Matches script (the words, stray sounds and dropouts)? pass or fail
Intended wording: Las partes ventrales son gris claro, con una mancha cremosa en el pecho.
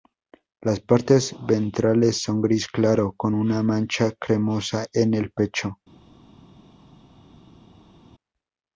pass